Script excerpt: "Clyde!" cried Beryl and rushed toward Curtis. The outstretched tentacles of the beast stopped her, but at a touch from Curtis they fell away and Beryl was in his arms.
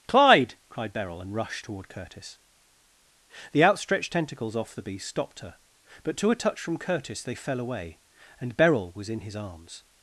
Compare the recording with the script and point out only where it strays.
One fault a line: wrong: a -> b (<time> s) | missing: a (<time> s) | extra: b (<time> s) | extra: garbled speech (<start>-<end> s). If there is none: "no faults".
wrong: of -> off (4.6 s)
wrong: at -> to (6.2 s)